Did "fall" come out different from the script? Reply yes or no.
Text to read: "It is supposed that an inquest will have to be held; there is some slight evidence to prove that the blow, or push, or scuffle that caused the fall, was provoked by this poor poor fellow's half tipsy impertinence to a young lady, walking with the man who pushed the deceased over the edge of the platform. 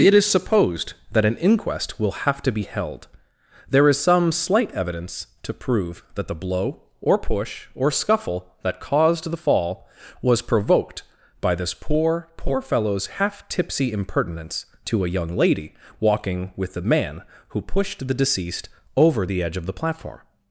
no